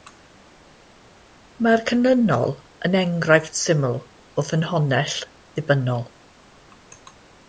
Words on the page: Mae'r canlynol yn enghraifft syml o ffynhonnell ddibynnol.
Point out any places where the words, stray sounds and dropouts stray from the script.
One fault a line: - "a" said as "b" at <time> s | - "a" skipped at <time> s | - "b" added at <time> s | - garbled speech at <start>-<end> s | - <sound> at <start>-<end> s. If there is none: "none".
none